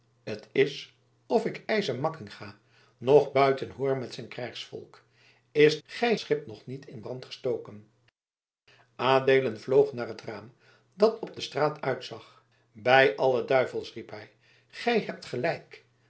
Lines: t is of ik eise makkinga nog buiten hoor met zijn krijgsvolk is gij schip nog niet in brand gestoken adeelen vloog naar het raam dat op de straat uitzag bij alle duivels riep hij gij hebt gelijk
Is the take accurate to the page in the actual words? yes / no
yes